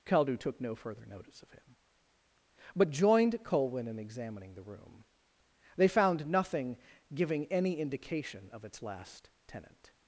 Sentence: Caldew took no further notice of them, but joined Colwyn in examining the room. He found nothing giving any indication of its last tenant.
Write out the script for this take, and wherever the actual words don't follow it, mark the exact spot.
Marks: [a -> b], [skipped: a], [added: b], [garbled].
Caldew took no further notice of [them, -> him] but joined Colwyn in examining the room. [He -> They] found nothing giving any indication of its last tenant.